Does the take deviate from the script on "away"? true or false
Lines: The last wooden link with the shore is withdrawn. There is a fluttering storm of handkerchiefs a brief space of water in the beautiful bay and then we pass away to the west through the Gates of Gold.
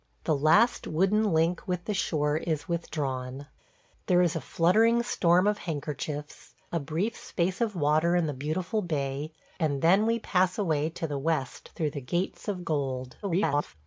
false